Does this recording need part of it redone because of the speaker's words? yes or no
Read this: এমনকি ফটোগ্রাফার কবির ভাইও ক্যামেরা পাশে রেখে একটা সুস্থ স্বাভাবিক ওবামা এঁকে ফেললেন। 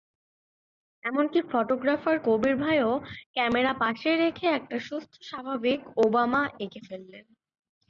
no